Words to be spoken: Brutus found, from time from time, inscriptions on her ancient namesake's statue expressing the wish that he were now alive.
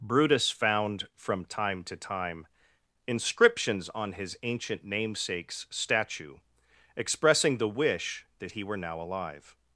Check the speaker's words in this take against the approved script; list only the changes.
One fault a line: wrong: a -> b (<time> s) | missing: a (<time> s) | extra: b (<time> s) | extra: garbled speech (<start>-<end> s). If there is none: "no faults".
wrong: from -> to (1.8 s)
wrong: her -> his (4.1 s)